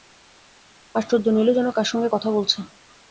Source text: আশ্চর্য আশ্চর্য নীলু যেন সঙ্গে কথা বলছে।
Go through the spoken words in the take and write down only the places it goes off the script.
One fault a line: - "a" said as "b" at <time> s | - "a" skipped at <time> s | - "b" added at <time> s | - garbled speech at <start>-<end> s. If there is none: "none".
- "আশ্চর্য" skipped at 1.2 s
- "কার" added at 1.7 s